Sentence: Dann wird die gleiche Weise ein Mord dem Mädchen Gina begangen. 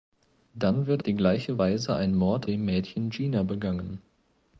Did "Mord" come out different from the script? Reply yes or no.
no